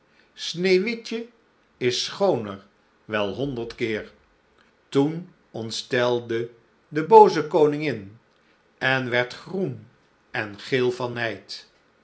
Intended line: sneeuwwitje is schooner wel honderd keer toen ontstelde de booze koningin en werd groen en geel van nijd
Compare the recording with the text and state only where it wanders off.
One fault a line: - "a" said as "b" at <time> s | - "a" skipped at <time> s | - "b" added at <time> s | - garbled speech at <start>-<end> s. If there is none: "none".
none